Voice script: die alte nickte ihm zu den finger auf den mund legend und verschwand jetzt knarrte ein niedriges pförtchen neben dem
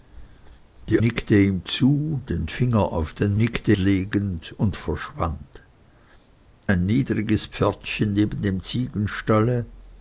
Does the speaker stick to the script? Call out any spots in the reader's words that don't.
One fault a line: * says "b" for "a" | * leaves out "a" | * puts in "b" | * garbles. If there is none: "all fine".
* leaves out "alte"
* says "nickte" for "mund"
* leaves out "jetzt knarrte"